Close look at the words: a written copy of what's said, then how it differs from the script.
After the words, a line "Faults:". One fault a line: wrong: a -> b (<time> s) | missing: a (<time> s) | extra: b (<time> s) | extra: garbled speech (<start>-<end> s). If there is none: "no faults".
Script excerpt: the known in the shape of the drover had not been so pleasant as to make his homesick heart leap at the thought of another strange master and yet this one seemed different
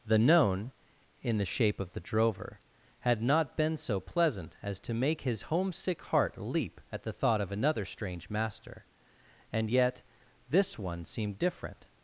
the known in the shape of the drover had not been so pleasant as to make his homesick heart leap at the thought of another strange master and yet this one seemed different
Faults:
no faults